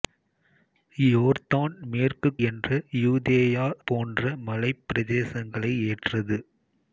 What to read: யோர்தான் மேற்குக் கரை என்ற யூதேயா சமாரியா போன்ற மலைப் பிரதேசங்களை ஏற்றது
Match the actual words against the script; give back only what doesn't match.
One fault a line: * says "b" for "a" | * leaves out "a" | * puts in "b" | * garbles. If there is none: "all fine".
* leaves out "கரை"
* leaves out "சமாரியா"